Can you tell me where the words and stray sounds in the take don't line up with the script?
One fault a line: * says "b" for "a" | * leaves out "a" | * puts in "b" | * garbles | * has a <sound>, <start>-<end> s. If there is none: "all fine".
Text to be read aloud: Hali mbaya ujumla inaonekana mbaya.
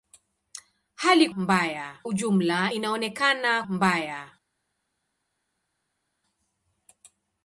all fine